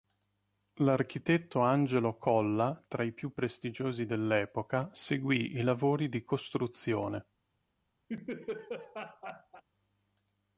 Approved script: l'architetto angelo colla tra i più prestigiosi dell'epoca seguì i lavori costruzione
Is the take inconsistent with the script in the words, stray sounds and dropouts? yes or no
yes